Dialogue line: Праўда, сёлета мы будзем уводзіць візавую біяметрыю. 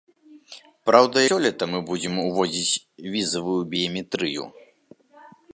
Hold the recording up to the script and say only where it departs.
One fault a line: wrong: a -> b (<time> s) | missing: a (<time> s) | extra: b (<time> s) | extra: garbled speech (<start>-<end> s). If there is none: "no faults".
no faults